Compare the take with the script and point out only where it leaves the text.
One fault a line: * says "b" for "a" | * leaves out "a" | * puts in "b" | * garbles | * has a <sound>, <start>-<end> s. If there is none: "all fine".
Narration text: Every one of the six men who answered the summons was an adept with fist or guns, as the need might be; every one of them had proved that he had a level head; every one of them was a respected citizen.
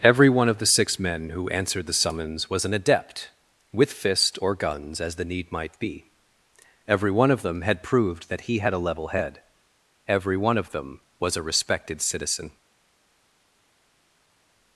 all fine